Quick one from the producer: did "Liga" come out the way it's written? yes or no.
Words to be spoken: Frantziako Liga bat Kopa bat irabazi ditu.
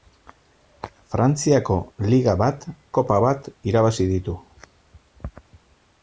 yes